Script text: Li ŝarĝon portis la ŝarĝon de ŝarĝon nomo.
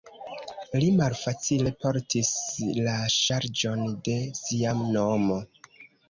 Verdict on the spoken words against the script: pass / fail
fail